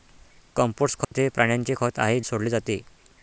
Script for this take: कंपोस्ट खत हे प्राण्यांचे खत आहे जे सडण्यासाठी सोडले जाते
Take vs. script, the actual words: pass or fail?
fail